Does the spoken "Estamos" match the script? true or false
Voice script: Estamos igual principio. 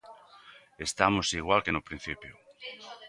true